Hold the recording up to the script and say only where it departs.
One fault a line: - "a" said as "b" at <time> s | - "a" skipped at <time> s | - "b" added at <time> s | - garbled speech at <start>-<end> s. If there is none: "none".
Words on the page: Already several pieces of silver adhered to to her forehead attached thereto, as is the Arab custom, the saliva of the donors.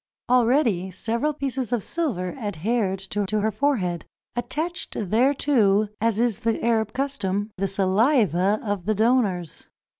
none